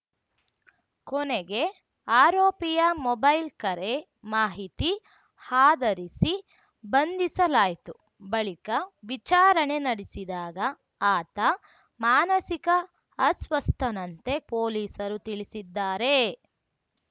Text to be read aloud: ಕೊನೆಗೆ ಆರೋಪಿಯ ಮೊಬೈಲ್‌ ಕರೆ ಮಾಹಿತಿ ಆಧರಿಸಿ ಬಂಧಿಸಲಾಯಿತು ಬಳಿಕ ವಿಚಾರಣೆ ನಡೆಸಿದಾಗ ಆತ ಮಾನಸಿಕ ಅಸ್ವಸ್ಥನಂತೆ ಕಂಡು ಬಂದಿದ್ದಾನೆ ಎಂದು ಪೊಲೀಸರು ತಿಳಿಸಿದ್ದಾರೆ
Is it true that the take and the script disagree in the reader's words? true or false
true